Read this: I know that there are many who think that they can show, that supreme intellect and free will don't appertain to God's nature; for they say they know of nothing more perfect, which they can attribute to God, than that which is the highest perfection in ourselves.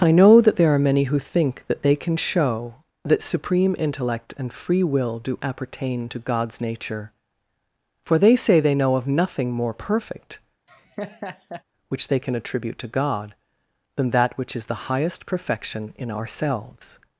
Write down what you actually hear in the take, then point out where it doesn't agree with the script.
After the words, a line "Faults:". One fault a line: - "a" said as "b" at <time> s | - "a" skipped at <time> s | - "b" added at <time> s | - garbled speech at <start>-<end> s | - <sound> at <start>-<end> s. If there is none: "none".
I know that there are many who think that they can show, that supreme intellect and free will do appertain to God's nature; for they say they know of nothing more perfect, which they can attribute to God, than that which is the highest perfection in ourselves.
Faults:
- "don't" said as "do" at 5.2 s
- laugh at 10.7-11.6 s